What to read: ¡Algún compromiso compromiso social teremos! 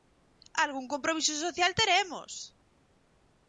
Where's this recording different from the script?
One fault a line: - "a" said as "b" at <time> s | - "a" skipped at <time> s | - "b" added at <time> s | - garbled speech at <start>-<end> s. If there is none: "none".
- "compromiso" skipped at 1.3 s